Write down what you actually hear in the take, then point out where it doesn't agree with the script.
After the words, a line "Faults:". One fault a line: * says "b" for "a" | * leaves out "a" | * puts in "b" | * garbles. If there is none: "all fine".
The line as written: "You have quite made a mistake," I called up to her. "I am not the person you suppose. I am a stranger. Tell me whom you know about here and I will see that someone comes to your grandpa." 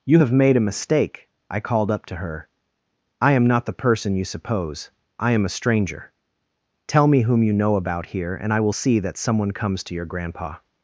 "You have made a mistake," I called up to her. "I am not the person you suppose. I am a stranger. Tell me whom you know about here and I will see that someone comes to your grandpa."
Faults:
* leaves out "quite"